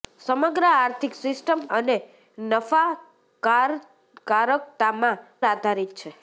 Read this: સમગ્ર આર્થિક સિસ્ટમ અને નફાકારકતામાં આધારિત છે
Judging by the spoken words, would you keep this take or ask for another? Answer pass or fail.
pass